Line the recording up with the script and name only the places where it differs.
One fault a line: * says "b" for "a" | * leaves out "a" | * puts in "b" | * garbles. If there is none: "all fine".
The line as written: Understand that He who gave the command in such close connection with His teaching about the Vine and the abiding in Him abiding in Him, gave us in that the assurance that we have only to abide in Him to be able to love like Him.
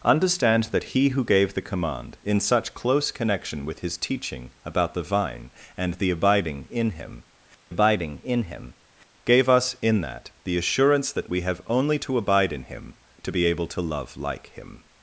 all fine